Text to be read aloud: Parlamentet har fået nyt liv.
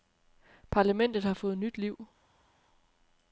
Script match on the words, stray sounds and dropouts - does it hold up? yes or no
yes